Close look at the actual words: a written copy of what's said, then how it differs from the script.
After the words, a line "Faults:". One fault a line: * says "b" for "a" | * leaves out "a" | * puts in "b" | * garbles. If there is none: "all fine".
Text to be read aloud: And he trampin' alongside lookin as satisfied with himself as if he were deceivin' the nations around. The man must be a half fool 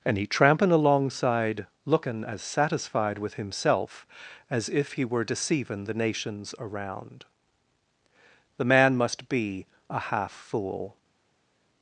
And he trampin' alongside lookin as satisfied with himself as if he were deceivin' the nations around. The man must be a half fool
Faults:
all fine